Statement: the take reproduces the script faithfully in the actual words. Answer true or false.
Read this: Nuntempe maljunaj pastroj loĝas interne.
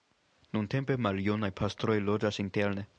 true